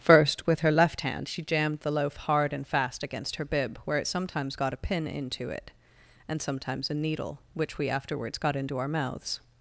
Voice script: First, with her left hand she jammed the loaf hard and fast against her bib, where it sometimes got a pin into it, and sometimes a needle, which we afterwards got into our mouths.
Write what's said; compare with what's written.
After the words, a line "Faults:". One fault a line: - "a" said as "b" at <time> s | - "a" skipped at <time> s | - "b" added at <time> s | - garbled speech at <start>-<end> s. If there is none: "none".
First, with her left hand she jammed the loaf hard and fast against her bib, where it sometimes got a pin into it, and sometimes a needle, which we afterwards got into our mouths.
Faults:
none